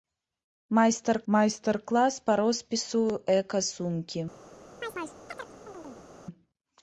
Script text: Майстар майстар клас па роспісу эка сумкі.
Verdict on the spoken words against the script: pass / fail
pass